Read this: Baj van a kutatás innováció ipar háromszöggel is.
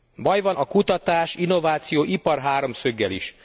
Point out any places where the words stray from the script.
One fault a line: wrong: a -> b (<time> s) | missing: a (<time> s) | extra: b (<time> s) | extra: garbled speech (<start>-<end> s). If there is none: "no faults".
no faults